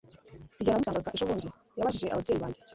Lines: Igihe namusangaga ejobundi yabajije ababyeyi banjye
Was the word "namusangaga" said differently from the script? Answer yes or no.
no